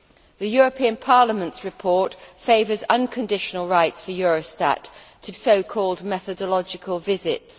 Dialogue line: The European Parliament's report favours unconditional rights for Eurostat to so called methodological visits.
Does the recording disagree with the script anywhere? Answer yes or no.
no